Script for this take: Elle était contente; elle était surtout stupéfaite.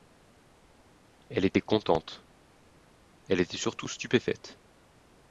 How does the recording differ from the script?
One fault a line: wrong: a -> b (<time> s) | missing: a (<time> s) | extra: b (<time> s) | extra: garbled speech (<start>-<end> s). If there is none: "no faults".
no faults